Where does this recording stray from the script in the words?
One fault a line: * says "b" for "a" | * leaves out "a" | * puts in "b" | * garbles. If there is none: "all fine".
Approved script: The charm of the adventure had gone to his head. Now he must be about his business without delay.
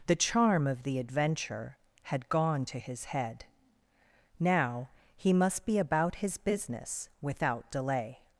all fine